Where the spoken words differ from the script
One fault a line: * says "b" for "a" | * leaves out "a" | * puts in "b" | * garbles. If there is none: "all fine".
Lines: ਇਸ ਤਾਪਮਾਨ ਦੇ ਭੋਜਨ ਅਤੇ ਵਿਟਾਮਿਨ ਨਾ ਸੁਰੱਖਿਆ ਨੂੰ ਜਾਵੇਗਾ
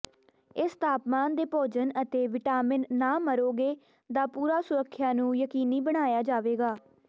* puts in "ਮਰੋਗੇ ਦਾ ਪੂਰਾ"
* puts in "ਯਕੀਨੀ ਬਣਾਇਆ"